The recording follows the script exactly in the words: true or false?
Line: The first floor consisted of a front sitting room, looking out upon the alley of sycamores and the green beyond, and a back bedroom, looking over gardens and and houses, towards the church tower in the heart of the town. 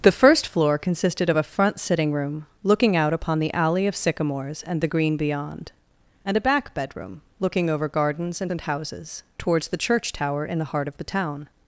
true